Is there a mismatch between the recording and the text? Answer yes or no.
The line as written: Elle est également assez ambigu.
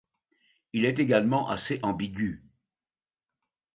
yes